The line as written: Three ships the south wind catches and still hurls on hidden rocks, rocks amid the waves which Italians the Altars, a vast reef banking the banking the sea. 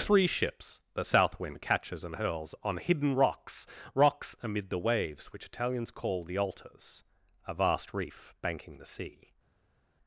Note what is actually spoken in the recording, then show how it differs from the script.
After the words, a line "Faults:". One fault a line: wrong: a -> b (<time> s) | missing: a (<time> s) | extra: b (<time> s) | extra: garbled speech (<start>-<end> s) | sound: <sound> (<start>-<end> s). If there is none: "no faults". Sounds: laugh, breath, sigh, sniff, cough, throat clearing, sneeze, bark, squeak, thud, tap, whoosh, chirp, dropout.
Three ships the south wind catches and hurls on hidden rocks, rocks amid the waves which Italians call the Altars, a vast reef banking the sea.
Faults:
missing: still (2.2 s)
extra: call (5.9 s)
missing: banking the (8.9 s)